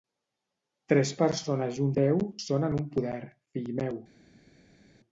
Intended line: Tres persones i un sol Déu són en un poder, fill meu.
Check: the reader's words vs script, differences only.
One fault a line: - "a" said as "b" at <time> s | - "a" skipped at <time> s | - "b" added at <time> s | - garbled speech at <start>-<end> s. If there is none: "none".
- "sol" skipped at 1.9 s